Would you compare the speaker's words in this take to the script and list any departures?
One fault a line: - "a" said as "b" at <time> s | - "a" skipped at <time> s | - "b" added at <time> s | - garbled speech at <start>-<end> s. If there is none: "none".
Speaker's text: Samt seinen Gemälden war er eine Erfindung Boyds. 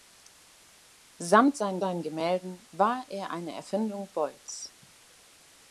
- "seinen" added at 1.8 s